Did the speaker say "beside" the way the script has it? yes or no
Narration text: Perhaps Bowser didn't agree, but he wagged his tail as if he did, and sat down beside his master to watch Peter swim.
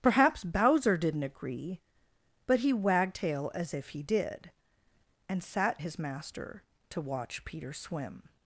no